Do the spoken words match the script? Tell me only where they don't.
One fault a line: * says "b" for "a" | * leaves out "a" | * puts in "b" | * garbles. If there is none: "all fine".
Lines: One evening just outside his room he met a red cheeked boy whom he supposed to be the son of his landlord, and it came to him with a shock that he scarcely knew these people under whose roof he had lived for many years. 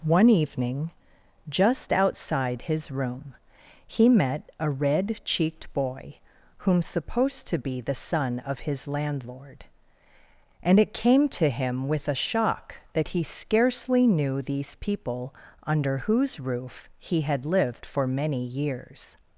* leaves out "he"